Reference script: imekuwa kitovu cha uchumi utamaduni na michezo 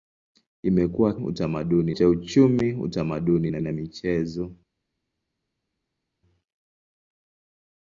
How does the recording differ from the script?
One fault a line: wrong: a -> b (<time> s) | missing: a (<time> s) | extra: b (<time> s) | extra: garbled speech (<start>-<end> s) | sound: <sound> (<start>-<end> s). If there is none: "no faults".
wrong: kitovu -> utamaduni (1.2 s)
extra: na (3.6 s)